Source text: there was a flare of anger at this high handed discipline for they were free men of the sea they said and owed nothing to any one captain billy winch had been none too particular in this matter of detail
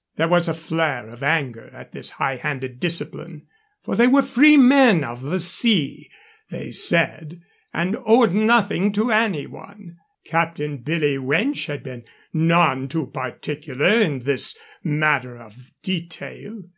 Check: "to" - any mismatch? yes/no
no